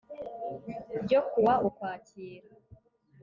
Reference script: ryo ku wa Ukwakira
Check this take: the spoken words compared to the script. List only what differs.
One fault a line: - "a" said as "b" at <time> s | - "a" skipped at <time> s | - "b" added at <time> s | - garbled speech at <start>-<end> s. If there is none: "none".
none